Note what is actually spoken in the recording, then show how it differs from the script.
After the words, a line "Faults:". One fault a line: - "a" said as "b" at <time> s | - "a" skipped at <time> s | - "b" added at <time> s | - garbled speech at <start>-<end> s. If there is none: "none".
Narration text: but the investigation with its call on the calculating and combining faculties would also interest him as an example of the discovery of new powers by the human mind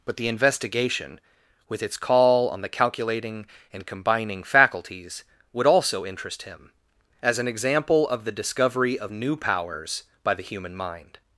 but the investigation with its call on the calculating and combining faculties would also interest him as an example of the discovery of new powers by the human mind
Faults:
none